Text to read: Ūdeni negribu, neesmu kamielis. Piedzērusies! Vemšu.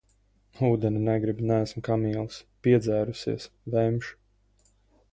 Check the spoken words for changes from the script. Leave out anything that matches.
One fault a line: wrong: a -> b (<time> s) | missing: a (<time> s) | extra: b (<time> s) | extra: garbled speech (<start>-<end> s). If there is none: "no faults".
no faults